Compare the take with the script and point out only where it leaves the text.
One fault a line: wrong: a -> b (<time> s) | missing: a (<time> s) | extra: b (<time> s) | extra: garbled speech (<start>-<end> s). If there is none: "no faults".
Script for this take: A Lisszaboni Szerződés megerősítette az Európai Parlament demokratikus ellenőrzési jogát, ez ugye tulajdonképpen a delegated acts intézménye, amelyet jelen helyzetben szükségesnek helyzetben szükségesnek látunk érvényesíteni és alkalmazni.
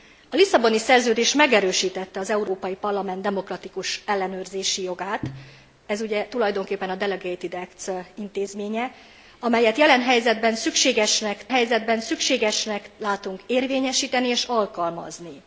no faults